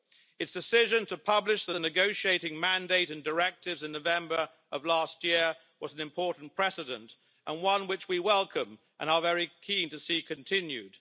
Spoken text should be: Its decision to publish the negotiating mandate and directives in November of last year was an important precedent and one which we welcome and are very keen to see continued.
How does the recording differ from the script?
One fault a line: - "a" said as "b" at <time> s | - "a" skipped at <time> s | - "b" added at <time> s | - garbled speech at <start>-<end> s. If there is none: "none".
- "the" added at 1.7 s